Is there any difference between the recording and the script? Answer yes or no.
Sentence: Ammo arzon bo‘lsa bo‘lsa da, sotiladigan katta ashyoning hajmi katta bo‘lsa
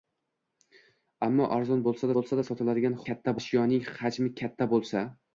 no